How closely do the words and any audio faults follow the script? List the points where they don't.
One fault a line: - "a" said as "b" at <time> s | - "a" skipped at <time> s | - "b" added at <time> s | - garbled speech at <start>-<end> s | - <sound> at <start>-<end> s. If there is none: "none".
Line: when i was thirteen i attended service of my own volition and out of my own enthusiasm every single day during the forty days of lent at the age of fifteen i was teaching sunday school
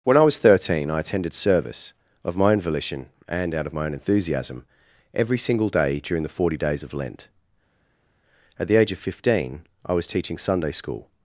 none